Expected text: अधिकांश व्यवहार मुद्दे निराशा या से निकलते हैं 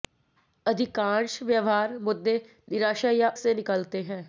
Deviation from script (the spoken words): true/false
false